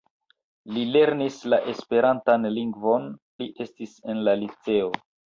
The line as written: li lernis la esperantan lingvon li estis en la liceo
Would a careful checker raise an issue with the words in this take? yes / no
no